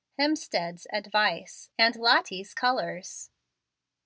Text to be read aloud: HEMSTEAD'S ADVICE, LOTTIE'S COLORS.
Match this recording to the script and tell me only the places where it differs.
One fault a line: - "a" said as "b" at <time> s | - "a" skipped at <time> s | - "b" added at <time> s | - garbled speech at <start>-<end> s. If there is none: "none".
- "AND" added at 1.8 s